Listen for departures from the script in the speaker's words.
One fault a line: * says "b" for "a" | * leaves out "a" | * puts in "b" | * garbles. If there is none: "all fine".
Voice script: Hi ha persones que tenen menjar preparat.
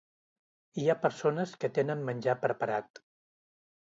all fine